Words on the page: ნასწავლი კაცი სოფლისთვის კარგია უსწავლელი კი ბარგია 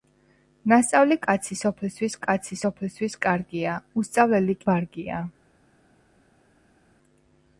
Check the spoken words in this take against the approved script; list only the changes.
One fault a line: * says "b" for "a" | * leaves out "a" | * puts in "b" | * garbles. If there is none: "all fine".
* puts in "კაცი სოფლისთვის"
* leaves out "კი"